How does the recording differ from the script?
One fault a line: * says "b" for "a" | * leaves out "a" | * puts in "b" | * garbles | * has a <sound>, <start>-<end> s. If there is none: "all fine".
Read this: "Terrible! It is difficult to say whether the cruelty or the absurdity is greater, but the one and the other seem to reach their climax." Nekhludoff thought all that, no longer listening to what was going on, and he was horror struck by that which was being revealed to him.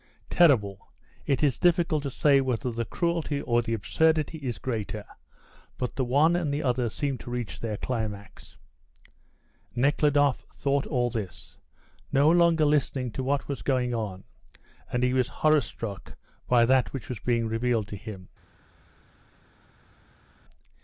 * says "this" for "that"